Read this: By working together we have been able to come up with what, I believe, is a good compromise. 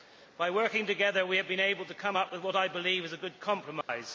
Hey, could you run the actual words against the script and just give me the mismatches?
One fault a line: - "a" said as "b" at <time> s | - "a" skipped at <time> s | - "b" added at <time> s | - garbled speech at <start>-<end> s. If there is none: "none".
none